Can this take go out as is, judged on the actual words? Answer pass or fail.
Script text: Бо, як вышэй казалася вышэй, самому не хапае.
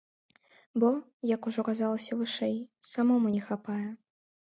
fail